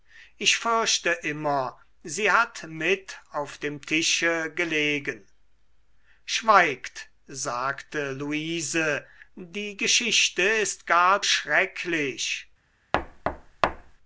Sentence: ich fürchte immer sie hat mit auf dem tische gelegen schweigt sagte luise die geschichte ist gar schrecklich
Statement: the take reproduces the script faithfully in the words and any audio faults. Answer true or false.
false